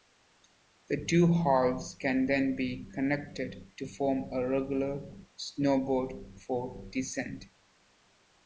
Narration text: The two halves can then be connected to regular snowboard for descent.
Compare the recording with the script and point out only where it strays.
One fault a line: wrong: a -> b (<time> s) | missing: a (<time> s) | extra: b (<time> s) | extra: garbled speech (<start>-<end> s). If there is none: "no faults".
extra: form a (3.9 s)